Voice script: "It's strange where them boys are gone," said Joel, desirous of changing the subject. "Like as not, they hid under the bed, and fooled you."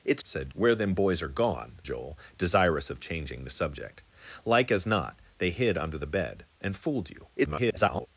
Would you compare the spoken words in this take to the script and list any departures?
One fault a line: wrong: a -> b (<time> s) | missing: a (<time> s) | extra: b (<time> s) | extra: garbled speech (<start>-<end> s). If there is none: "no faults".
wrong: strange -> said (0.2 s)
missing: said (1.8 s)
extra: garbled speech (7.4-8.1 s)